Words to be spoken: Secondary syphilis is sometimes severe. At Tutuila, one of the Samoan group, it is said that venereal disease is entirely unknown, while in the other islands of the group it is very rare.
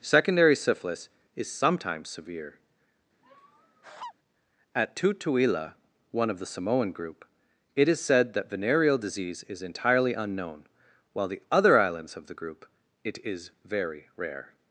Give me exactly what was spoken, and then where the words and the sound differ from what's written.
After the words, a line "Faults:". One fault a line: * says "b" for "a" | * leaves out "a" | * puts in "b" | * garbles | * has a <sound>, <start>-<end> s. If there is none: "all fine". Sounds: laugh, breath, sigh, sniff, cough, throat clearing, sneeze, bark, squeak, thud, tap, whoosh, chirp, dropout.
Secondary syphilis is sometimes severe. At Tutuila, one of the Samoan group, it is said that venereal disease is entirely unknown, while the other islands of the group it is very rare.
Faults:
* has a laugh, 3.2-4.1 s
* leaves out "in"